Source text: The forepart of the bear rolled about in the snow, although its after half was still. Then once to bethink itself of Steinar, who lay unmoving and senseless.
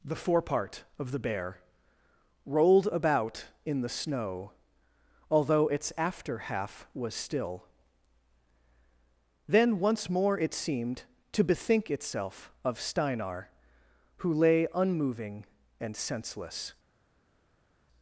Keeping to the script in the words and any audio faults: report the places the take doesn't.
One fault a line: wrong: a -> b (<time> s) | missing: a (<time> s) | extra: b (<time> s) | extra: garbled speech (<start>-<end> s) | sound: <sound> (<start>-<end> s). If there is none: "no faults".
extra: more it seemed (10.1 s)